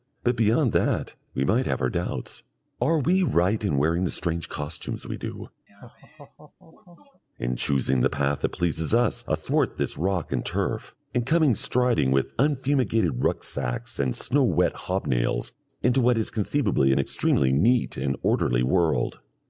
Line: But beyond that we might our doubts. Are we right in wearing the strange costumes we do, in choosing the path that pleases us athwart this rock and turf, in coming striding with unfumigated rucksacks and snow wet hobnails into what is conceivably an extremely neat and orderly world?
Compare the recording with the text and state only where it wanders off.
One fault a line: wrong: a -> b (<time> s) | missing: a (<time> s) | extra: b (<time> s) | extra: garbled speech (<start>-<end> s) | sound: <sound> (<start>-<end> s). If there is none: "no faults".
extra: have (1.7 s)
sound: laugh (5.7-7.2 s)